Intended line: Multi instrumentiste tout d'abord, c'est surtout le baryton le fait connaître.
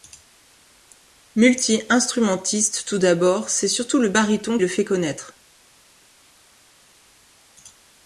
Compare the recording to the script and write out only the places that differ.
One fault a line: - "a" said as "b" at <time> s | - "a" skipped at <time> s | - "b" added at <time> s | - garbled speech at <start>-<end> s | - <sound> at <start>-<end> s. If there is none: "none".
none